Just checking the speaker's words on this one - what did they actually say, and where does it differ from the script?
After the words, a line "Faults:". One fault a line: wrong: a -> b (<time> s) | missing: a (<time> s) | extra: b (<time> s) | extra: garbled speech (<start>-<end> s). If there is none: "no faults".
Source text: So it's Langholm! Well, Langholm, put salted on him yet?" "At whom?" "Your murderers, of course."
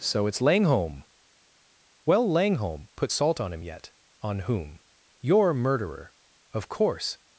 So it's Langholm! Well, Langholm, put salt on him yet?" "On whom?" "Your murderer, of course."
Faults:
wrong: salted -> salt (3.1 s)
wrong: At -> On (4.2 s)
wrong: murderers -> murderer (5.5 s)